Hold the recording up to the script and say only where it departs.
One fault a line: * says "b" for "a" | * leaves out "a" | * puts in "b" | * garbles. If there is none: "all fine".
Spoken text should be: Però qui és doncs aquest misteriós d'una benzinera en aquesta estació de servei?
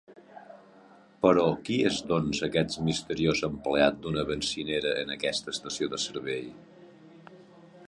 * puts in "empleat"